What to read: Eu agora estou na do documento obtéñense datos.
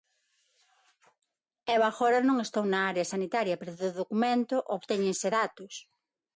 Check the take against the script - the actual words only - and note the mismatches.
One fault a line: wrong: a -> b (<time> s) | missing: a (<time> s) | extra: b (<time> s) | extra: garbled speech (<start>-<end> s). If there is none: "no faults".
extra: non (2.3 s)
extra: área sanitaria pero (2.9 s)